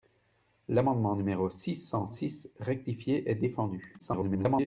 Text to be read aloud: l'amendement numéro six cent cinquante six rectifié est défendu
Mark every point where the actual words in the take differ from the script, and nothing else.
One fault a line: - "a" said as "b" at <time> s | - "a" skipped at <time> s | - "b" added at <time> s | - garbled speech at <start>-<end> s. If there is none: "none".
- "cinquante" skipped at 2.1 s
- garbled speech at 4.0-4.7 s